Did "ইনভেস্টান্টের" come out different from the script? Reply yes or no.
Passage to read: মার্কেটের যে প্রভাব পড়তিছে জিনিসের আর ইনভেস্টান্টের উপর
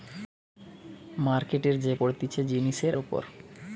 yes